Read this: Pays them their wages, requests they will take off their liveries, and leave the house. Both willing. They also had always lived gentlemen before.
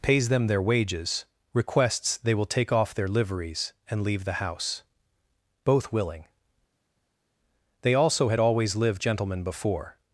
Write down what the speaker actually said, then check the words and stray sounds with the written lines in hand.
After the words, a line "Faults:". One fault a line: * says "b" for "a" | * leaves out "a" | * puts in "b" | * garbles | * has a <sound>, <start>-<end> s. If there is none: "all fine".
Pays them their wages, requests they will take off their liveries, and leave the house. Both willing. They also had always lived gentlemen before.
Faults:
all fine